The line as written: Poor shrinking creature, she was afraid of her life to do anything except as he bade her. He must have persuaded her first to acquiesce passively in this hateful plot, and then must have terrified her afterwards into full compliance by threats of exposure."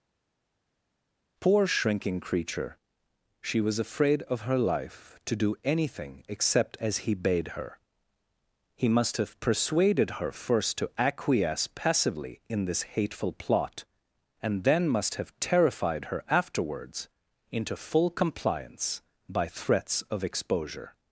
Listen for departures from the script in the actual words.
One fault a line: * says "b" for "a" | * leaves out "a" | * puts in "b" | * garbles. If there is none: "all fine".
all fine